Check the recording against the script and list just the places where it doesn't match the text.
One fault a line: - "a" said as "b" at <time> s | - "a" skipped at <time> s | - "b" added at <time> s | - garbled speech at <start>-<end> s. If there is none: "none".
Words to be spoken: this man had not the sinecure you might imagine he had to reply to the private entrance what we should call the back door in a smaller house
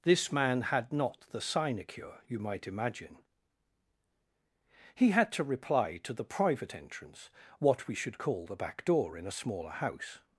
none